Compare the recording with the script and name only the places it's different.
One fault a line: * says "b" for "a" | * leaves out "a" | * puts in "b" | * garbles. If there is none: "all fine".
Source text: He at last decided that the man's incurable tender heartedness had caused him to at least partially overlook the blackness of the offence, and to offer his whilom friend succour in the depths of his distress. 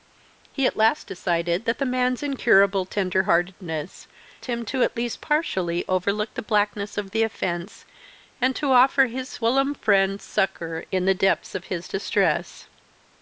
* leaves out "had caused"